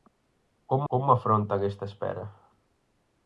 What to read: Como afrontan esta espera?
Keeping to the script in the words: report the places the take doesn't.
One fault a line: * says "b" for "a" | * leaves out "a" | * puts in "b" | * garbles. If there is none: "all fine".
* puts in "como"